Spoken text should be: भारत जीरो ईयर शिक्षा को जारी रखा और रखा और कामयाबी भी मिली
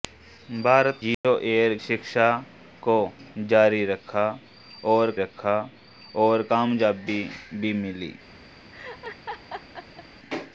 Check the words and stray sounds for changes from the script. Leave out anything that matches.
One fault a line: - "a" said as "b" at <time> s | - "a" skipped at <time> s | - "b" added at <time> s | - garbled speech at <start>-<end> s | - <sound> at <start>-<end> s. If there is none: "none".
- dropout at 1.1-1.2 s
- laugh at 8.7-10.1 s